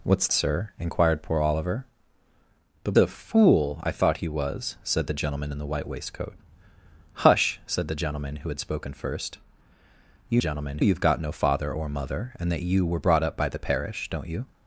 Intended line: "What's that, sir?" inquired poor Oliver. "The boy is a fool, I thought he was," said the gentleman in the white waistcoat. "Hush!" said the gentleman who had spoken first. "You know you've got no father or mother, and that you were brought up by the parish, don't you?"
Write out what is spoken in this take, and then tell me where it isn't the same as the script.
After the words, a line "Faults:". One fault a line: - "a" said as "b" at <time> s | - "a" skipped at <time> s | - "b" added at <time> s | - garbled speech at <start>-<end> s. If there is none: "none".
"What's sir?" inquired poor Oliver. "The a fool, I thought he was," said the gentleman in the white waistcoat. "Hush!" said the gentleman who had spoken first. "You gentleman you've got no father or mother, and that you were brought up by the parish, don't you?"
Faults:
- "that" skipped at 0.3 s
- "boy is" skipped at 2.9 s
- "know" said as "gentleman" at 10.4 s